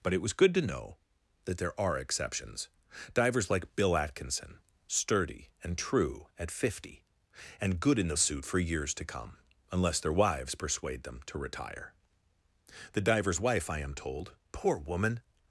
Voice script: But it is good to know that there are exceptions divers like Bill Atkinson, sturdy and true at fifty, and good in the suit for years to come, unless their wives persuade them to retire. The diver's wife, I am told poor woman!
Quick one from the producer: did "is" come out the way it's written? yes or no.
no